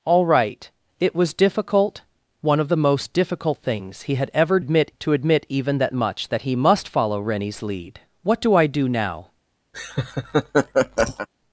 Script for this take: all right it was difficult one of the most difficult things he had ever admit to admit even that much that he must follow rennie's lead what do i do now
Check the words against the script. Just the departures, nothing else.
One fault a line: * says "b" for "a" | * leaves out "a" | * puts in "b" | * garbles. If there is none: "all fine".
all fine